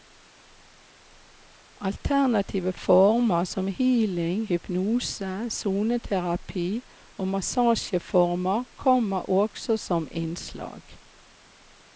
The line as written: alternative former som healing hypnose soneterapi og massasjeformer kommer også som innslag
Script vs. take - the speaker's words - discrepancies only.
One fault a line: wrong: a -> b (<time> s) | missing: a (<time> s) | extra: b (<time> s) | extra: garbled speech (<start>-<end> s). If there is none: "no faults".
no faults